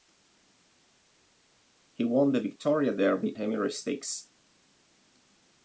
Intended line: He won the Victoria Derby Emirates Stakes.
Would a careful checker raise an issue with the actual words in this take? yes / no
no